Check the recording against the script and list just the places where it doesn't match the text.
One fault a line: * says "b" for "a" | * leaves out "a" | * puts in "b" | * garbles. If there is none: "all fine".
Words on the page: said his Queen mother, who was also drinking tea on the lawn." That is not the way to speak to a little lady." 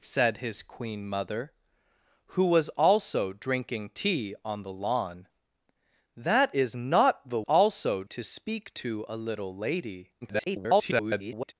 * says "also" for "way"
* garbles